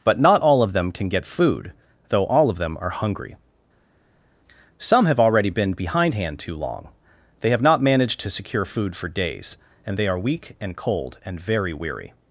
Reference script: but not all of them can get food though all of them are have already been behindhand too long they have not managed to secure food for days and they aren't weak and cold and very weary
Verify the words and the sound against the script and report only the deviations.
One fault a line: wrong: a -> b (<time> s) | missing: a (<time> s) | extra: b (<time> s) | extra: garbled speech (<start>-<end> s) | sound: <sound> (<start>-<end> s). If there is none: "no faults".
extra: hungry some (2.9 s)
wrong: aren't -> are (10.1 s)